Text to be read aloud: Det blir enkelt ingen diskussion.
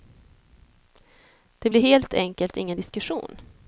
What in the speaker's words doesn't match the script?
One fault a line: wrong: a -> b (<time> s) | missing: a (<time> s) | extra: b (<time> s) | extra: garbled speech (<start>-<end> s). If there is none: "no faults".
extra: helt (1.8 s)